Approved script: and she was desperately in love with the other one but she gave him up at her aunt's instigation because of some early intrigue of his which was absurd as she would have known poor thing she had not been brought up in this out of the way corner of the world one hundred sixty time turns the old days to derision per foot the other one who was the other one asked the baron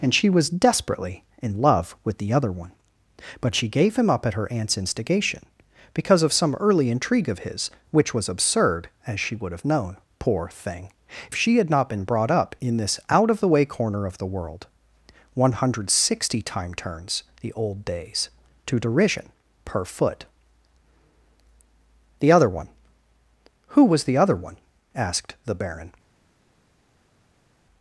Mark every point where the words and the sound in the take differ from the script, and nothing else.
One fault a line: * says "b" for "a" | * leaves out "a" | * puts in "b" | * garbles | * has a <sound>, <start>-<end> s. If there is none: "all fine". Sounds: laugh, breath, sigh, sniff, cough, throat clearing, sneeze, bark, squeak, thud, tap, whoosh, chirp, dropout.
all fine